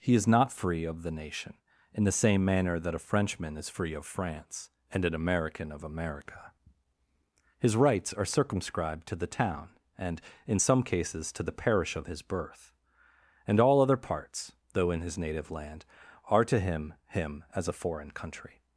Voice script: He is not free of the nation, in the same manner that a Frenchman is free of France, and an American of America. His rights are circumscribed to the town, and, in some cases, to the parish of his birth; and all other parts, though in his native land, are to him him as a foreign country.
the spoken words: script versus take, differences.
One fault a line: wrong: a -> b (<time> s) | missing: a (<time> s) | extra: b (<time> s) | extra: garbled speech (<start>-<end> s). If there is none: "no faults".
no faults